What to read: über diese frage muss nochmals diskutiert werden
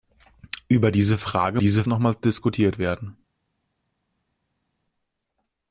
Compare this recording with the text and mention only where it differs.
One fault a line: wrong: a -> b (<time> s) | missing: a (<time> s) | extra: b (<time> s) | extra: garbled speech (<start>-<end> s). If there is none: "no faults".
wrong: muss -> diese (1.6 s)